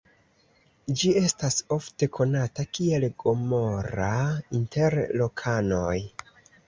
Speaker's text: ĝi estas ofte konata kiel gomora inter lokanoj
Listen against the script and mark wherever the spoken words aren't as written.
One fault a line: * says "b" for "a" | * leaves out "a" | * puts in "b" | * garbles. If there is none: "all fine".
all fine